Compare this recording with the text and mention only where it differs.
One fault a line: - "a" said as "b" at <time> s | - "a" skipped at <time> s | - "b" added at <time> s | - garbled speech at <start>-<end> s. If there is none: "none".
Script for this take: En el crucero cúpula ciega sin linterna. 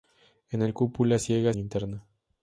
- "crucero" skipped at 0.7 s
- "sin" skipped at 1.5 s